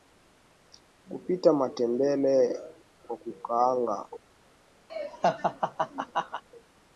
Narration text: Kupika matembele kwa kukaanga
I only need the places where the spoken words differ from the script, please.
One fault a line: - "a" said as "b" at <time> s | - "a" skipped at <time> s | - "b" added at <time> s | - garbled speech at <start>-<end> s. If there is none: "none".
none